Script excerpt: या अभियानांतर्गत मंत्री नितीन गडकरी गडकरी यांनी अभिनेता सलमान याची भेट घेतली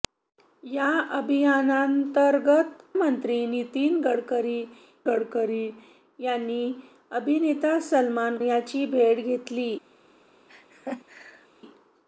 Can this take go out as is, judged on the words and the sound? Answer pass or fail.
fail